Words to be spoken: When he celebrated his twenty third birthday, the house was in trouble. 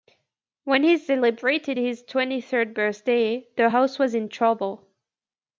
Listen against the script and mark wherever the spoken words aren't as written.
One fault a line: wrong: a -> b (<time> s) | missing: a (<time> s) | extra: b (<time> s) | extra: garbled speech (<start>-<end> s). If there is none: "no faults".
no faults